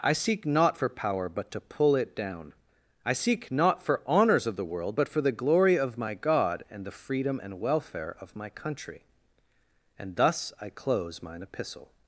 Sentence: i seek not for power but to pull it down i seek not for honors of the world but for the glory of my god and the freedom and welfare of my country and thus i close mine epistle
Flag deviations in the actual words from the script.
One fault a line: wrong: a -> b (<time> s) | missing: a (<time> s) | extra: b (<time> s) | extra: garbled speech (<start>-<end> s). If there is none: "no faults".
no faults